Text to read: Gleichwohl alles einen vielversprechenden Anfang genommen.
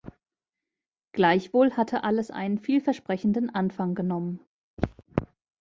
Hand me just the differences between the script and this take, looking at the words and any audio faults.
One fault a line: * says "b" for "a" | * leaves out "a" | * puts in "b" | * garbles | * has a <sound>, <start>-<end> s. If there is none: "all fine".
* puts in "hatte"
* has a throat clearing, 4.8-5.0 s